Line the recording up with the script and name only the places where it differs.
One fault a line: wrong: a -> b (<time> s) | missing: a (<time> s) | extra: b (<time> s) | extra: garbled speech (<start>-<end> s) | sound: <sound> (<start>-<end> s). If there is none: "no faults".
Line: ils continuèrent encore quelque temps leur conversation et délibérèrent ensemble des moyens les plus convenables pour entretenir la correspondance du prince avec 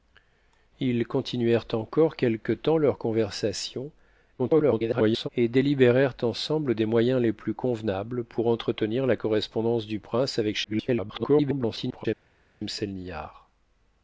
extra: garbled speech (4.4-5.3 s)
extra: garbled speech (10.6-12.1 s)